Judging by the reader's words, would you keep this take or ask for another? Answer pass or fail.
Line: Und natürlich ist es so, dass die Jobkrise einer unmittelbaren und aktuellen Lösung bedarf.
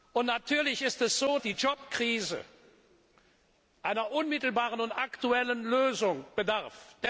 fail